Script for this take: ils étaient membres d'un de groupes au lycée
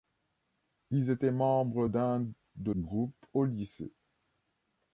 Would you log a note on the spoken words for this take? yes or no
no